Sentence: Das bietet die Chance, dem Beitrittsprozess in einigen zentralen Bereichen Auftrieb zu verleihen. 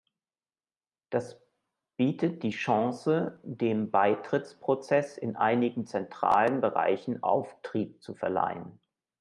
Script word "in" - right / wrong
right